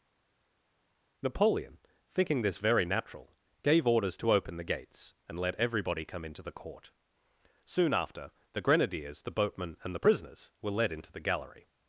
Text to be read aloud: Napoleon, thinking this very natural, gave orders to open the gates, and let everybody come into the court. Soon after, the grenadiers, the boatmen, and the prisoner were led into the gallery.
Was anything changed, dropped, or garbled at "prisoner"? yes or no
yes